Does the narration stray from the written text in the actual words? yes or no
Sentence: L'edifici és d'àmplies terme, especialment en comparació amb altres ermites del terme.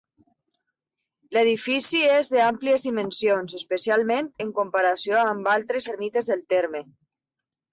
yes